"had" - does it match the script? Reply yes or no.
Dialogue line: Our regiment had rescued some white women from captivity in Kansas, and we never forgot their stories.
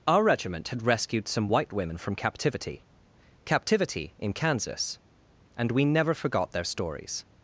yes